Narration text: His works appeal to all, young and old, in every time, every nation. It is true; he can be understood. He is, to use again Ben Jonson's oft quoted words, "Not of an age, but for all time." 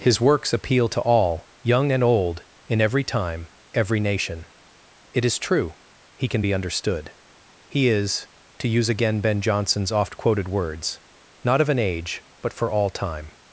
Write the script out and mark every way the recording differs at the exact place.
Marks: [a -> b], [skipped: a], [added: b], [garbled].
His works appeal to all, young and old, in every time, every nation. It is true; he can be understood. He is, to use again Ben Jonson's oft quoted words, "Not of an age, but for all time."